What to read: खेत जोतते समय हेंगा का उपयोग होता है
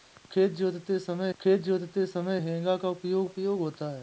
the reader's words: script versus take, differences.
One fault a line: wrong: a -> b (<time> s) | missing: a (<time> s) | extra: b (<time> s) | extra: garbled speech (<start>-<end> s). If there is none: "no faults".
extra: खेत जोतते समय (1.4 s)
extra: उपयोग (3.2 s)